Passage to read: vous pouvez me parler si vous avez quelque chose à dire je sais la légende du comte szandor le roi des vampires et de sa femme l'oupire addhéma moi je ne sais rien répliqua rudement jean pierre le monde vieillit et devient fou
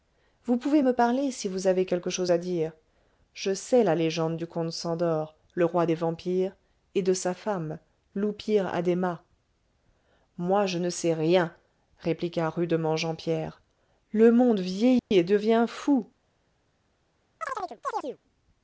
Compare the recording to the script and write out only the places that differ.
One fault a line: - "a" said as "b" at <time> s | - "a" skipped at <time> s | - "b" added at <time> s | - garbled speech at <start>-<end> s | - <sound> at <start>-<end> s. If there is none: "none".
- dropout at 15.0-15.1 s
- chirp at 17.4-18.2 s